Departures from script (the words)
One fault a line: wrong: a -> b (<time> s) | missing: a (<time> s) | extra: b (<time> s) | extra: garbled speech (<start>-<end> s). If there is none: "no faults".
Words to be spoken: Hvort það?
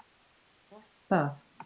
no faults